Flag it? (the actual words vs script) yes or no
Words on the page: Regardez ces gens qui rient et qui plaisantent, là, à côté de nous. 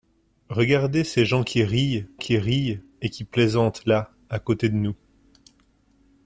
yes